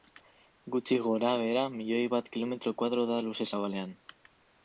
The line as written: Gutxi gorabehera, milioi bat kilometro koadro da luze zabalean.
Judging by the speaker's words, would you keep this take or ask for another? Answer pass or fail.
pass